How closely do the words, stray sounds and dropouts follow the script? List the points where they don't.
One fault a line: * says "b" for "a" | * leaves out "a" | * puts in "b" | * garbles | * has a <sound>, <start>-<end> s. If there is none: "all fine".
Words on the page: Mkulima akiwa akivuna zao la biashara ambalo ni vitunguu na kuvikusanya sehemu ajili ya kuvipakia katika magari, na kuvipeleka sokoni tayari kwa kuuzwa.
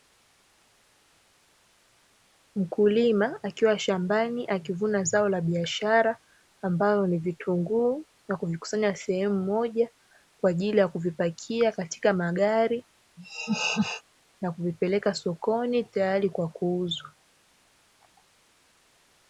* puts in "shambani"
* puts in "moja kwa"
* has a laugh, 13.2-14.0 s